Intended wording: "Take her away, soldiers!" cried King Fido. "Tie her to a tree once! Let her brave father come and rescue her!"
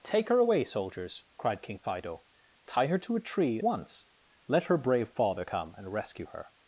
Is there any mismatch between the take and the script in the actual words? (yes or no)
no